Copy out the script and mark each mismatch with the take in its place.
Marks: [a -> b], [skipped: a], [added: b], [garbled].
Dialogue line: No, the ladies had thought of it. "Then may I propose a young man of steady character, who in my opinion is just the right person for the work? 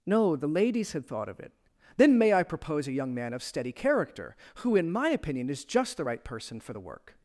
No, the ladies had thought of it. "Then may I propose a young man of steady character, who in my opinion is just the right person for the work?